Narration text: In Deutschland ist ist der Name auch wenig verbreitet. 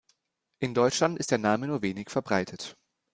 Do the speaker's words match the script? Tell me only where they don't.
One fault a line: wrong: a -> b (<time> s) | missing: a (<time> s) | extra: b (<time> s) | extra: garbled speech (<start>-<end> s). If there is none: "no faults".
missing: ist (1.3 s)
wrong: auch -> nur (1.7 s)